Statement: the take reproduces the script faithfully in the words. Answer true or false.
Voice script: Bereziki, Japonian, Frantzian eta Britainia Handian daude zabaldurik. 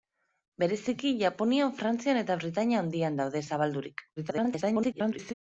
false